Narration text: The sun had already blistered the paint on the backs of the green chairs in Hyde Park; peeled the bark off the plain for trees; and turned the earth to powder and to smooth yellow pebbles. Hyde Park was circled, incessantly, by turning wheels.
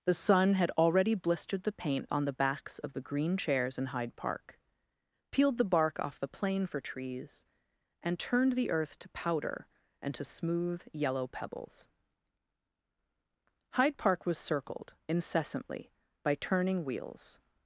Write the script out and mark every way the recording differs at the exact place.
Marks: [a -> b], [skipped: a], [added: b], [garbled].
The sun had already blistered the paint on the backs of the green chairs in Hyde Park; peeled the bark off the plain for trees; and turned the earth to powder and to smooth yellow pebbles. Hyde Park was circled, incessantly, by turning wheels.